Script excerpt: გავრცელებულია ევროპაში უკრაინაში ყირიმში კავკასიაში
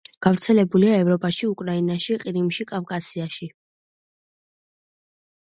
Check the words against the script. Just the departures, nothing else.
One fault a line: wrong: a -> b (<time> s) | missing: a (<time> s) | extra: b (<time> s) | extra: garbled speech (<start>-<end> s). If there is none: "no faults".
no faults